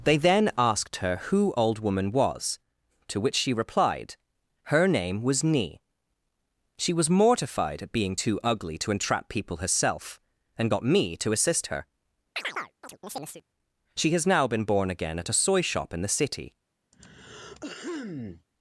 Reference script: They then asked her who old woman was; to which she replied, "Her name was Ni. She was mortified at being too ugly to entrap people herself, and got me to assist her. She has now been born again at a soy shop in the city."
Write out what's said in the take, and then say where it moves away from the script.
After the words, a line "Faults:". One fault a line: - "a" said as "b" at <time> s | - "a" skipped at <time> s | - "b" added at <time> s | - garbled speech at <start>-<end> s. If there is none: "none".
They then asked her who old woman was; to which she replied, "Her name was Ni. She was mortified at being too ugly to entrap people herself, and got me to assist her. She has now been born again at a soy shop in the city."
Faults:
none